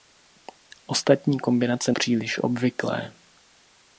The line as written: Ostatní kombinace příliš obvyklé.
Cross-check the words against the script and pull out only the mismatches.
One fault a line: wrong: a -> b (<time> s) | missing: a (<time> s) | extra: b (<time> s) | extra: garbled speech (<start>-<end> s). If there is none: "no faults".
no faults